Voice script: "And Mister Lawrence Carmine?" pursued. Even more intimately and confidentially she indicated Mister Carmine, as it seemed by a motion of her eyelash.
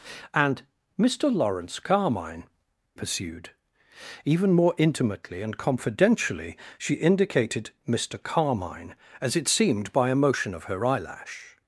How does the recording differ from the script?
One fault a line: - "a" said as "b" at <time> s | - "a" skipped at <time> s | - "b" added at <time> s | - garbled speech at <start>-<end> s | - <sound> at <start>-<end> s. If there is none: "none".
none